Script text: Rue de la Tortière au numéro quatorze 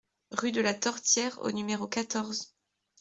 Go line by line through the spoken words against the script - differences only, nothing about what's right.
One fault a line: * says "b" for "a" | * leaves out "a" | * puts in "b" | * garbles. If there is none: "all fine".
all fine